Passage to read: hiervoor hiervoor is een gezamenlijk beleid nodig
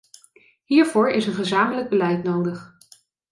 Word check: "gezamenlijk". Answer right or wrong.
right